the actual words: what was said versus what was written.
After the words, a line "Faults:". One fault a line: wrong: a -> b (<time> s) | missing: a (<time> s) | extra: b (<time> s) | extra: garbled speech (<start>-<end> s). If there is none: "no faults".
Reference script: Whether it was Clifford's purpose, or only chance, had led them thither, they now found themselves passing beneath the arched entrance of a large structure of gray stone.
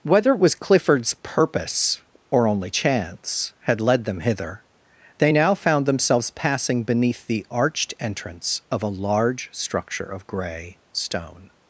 Whether it was Clifford's purpose, or only chance, had led them hither, they now found themselves passing beneath the arched entrance of a large structure of gray stone.
Faults:
wrong: thither -> hither (4.2 s)